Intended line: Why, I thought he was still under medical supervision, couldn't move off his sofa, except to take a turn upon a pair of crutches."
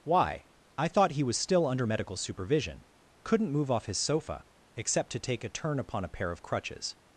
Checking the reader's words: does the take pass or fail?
pass